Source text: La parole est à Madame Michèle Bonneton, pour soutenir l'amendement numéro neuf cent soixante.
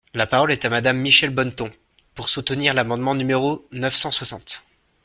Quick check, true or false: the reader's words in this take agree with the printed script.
true